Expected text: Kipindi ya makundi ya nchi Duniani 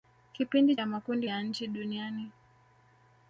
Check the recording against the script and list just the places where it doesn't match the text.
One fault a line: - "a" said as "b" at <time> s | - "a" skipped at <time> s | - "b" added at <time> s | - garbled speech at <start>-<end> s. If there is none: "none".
none